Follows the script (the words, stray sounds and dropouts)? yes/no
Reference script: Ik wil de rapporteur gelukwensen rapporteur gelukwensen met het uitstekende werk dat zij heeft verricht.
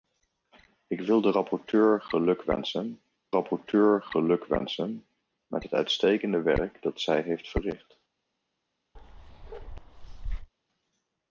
no